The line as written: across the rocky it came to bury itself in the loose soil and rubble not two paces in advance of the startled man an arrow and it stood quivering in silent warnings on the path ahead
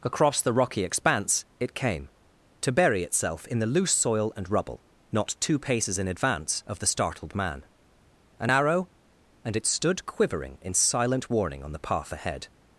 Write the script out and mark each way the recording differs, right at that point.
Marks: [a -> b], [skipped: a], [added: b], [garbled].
across the rocky [added: expanse] it came to bury itself in the loose soil and rubble not two paces in advance of the startled man an arrow and it stood quivering in silent [warnings -> warning] on the path ahead